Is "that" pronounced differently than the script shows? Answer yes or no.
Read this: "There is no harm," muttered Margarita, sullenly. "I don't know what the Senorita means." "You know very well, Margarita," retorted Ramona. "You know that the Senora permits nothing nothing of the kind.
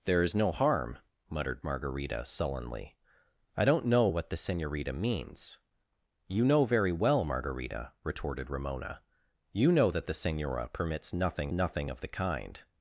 no